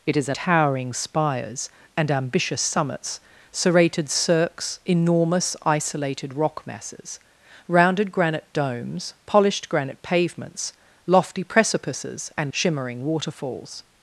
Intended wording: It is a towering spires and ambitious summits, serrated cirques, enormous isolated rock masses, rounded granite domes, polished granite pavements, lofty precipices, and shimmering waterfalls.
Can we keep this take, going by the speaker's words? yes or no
yes